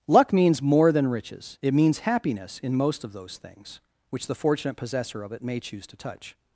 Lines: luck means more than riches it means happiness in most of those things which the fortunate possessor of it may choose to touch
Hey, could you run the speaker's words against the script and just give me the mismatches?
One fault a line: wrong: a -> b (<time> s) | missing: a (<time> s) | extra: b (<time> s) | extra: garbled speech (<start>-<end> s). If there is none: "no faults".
no faults